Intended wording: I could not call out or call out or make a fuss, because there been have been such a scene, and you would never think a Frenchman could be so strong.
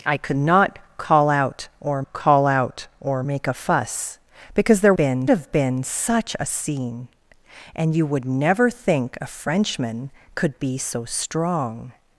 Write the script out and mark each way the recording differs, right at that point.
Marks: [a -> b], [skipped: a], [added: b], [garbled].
I could not call out or call out or make a fuss, because there been have been such a scene, and you would never think a Frenchman could be so strong.